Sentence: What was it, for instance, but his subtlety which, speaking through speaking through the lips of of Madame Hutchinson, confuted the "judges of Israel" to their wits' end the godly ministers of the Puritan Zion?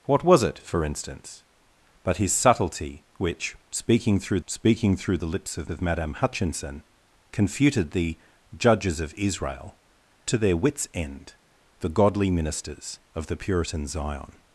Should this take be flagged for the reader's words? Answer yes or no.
no